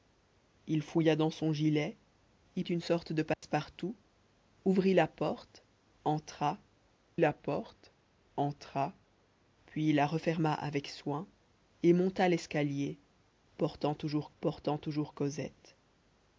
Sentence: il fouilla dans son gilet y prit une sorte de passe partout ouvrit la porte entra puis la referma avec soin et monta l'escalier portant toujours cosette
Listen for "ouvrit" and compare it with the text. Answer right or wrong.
right